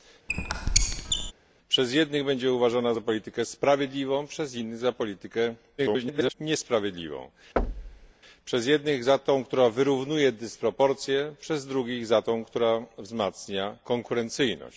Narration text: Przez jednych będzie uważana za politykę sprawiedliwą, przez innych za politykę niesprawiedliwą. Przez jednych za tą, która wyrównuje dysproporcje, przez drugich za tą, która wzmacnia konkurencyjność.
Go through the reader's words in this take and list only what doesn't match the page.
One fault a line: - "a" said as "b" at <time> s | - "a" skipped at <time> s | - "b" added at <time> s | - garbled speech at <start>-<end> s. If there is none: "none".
- garbled speech at 5.8-6.3 s